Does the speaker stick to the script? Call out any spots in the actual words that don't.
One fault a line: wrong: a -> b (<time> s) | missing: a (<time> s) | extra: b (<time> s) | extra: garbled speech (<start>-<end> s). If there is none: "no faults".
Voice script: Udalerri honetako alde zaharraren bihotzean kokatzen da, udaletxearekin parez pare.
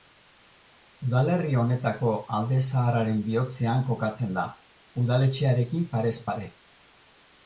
no faults